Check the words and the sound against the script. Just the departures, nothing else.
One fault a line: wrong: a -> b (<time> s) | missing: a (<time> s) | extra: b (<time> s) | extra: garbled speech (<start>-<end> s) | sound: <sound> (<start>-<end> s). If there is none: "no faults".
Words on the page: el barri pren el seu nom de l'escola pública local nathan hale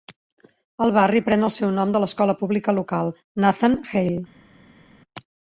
no faults